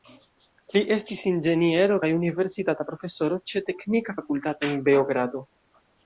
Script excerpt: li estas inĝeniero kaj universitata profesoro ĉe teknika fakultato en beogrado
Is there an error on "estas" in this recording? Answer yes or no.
yes